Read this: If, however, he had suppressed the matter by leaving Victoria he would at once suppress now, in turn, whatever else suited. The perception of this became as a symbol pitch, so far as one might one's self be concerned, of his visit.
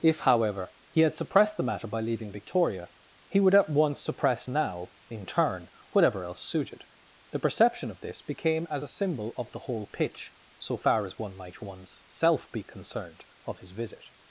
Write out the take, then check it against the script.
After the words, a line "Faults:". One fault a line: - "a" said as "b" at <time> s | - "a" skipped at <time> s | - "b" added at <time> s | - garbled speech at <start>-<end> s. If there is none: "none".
If, however, he had suppressed the matter by leaving Victoria he would at once suppress now, in turn, whatever else suited. The perception of this became as a symbol of the whole pitch, so far as one might one's self be concerned, of his visit.
Faults:
- "of the whole" added at 9.4 s